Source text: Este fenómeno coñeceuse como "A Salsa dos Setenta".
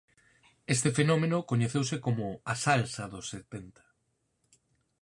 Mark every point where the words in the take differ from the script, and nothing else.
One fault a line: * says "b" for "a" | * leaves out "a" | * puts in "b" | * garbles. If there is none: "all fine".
all fine